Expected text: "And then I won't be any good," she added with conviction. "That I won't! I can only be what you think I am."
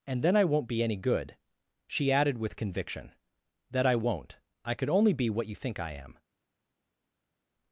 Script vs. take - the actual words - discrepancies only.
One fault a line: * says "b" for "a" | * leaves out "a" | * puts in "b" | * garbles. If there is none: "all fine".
* says "could" for "can"